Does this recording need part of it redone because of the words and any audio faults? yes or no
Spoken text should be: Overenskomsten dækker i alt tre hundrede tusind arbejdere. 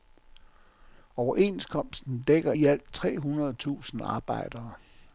no